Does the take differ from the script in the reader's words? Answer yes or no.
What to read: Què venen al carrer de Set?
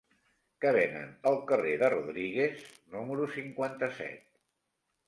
yes